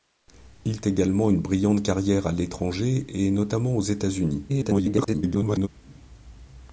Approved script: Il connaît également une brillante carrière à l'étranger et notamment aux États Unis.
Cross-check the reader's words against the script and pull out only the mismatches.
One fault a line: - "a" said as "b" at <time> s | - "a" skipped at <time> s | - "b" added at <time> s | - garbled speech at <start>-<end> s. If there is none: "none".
- "connaît" skipped at 0.8 s
- garbled speech at 4.5-5.7 s